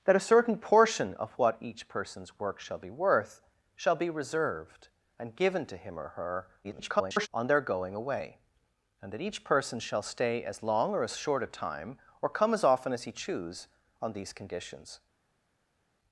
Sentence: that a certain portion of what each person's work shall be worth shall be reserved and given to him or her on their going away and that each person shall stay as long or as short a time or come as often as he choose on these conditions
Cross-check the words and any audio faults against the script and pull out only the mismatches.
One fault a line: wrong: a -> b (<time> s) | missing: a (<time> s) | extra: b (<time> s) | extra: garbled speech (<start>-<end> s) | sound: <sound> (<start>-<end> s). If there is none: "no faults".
extra: garbled speech (6.6-7.3 s)